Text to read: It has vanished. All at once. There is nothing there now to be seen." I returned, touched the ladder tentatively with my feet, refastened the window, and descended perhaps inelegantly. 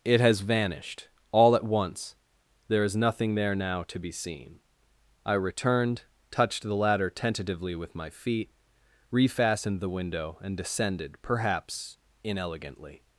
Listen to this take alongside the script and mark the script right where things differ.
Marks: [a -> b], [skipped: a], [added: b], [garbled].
It has vanished. All at once. There is nothing there now to be seen." I returned, touched the ladder tentatively with my feet, refastened the window, and descended perhaps inelegantly.